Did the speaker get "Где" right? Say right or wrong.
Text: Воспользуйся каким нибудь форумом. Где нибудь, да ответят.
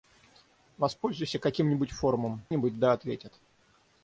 wrong